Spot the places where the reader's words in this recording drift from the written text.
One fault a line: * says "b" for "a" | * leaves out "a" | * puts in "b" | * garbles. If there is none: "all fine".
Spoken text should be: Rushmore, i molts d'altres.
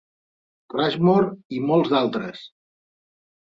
all fine